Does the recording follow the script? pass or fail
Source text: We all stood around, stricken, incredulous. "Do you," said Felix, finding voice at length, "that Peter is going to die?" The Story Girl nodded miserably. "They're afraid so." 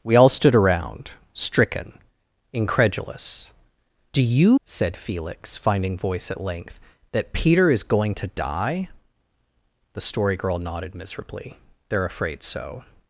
pass